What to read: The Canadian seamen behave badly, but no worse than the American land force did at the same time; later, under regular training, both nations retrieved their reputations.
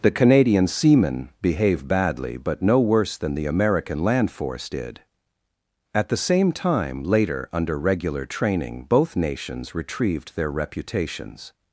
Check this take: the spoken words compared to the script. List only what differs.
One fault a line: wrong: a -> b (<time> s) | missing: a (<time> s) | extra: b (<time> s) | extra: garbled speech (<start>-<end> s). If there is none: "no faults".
no faults